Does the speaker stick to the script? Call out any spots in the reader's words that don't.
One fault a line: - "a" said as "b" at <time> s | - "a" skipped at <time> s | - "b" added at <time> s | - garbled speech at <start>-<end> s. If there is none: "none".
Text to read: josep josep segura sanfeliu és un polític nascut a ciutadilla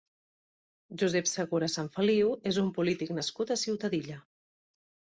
- "josep" skipped at 1.3 s